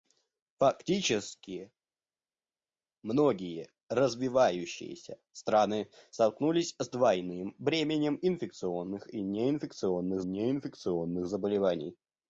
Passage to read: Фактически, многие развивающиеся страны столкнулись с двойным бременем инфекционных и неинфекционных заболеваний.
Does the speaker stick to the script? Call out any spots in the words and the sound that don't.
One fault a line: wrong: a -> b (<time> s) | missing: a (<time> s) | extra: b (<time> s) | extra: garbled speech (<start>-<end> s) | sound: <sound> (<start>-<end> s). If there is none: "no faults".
extra: неинфекционных (10.2 s)